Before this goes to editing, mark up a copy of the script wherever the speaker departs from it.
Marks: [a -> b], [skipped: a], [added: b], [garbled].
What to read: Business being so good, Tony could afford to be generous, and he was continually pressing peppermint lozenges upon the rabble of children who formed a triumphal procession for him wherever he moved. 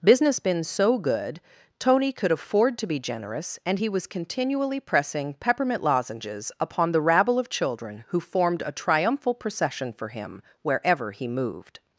Business [being -> been] so good, Tony could afford to be generous, and he was continually pressing peppermint lozenges upon the rabble of children who formed a triumphal procession for him wherever he moved.